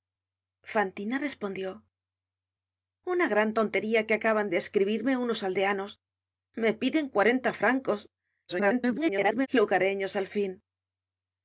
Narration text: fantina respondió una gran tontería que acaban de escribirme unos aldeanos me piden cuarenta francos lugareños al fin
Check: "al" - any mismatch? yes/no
no